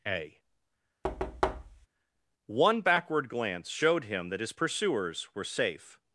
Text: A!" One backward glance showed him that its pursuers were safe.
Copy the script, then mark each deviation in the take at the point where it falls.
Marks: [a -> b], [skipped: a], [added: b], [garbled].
A!" One backward glance showed him that [its -> his] pursuers were safe.